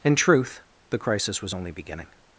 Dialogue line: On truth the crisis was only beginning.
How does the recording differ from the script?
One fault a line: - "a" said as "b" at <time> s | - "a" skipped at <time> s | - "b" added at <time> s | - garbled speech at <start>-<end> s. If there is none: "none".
- "On" said as "In" at 0.0 s